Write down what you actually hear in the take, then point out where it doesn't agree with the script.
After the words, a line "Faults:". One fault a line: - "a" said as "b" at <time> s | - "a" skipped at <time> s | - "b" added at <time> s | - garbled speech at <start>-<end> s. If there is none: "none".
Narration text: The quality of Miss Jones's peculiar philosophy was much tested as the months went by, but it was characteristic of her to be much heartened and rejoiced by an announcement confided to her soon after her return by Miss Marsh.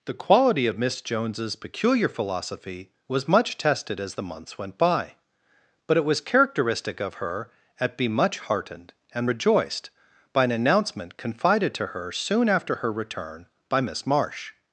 The quality of Miss Jones's peculiar philosophy was much tested as the months went by, but it was characteristic of her at be much heartened and rejoiced by an announcement confided to her soon after her return by Miss Marsh.
Faults:
- "to" said as "at" at 7.8 s